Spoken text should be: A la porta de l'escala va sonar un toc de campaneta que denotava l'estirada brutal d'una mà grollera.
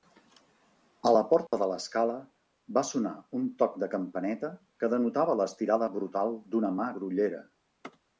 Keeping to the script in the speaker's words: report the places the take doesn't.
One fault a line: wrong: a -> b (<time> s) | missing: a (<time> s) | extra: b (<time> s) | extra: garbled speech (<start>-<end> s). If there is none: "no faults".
no faults